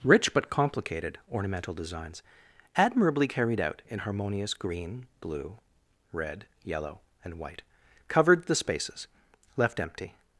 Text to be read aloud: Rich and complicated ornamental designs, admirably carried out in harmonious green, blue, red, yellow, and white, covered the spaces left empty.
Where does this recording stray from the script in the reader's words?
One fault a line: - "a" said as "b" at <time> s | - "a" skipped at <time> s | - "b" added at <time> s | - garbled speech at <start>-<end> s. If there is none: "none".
- "and" said as "but" at 0.3 s